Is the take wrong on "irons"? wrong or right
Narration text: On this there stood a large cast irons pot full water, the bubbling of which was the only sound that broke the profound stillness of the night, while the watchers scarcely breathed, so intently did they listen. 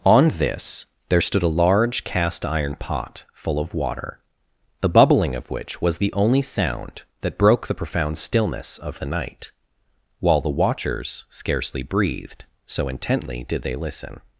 wrong